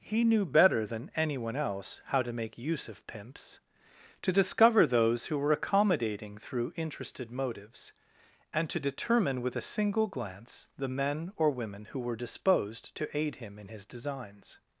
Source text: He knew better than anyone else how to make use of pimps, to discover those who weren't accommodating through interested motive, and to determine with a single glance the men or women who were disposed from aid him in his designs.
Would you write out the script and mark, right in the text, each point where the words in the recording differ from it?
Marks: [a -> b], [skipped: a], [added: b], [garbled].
He knew better than anyone else how to make use of pimps, to discover those who [weren't -> were] accommodating through interested [motive, -> motives] and to determine with a single glance the men or women who were disposed [from -> to] aid him in his designs.